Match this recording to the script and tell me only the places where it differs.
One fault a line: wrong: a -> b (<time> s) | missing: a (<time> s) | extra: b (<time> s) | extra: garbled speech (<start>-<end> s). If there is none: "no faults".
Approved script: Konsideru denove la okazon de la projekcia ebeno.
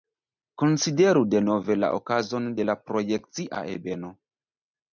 no faults